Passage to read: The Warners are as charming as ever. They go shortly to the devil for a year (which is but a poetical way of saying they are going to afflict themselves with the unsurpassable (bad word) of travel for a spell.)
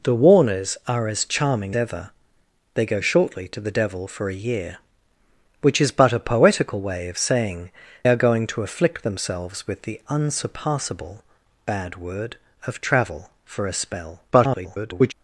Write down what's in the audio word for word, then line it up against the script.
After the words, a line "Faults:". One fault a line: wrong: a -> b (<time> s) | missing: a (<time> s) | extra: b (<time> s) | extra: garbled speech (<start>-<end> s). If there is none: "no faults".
The Warners are as charming ever. They go shortly to the devil for a year (which is but a poetical way of saying are going to afflict themselves with the unsurpassable (bad word) of travel for a spell.) [garbled]
Faults:
missing: as (1.8 s)
missing: they (7.7 s)
extra: garbled speech (14.3-15.1 s)